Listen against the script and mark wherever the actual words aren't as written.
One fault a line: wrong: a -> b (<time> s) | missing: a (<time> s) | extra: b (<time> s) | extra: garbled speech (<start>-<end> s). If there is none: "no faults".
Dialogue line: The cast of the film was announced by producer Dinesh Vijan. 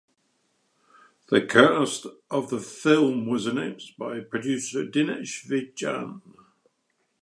no faults